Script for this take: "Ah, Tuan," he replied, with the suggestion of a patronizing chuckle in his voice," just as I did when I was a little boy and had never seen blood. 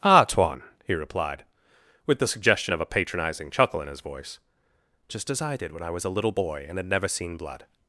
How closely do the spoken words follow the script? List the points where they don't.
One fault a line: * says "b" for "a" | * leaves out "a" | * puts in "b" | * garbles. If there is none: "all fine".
all fine